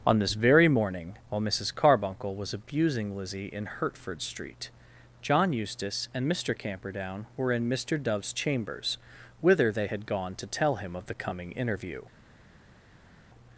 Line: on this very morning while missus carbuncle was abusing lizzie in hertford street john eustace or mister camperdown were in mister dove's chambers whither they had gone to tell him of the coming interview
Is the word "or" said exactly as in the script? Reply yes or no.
no